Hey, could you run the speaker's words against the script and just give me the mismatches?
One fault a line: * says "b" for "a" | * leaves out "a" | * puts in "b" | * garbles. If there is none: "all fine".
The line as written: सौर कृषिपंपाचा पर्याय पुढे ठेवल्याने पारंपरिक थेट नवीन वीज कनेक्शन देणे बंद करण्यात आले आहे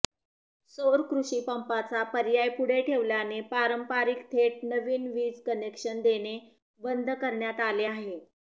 all fine